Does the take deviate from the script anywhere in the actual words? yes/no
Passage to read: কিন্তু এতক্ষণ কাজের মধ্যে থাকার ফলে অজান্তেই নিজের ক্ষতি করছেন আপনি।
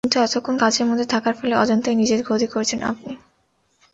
no